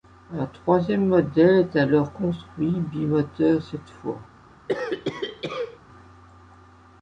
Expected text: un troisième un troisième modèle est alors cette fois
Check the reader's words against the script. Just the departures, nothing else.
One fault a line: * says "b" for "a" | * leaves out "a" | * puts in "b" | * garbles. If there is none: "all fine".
* leaves out "un troisième"
* puts in "construit bimoteur"